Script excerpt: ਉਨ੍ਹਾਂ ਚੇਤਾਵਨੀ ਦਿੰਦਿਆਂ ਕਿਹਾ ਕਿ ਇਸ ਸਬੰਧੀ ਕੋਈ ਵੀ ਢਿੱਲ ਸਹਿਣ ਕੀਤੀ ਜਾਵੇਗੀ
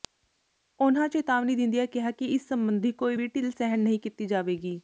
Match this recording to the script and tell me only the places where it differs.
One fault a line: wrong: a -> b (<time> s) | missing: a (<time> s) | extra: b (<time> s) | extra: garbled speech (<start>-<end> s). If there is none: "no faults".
extra: ਨਹੀਂ (3.8 s)